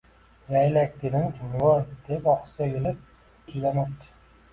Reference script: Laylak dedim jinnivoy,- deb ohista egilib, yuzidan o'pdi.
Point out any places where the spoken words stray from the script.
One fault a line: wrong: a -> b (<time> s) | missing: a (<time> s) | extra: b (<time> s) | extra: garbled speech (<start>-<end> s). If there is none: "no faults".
no faults